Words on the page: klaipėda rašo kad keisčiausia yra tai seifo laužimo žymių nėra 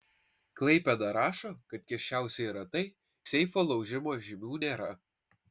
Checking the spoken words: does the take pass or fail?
pass